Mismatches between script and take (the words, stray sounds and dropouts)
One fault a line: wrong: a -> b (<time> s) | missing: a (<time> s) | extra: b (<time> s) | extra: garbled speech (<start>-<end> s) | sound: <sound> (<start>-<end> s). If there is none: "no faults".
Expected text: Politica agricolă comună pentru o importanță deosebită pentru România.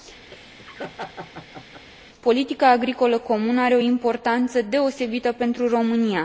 sound: laugh (0.3-1.8 s)
wrong: pentru -> are (3.6 s)